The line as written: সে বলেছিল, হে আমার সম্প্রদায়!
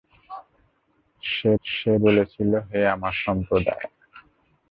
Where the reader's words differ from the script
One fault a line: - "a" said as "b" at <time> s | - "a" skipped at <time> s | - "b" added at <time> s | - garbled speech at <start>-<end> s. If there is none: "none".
- "সে" added at 1.6 s